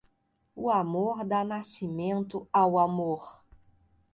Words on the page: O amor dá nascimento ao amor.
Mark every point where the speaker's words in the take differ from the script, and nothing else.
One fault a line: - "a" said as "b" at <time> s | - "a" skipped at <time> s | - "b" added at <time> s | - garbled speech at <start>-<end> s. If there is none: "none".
none